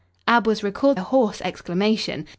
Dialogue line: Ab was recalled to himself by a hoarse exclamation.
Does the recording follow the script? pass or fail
fail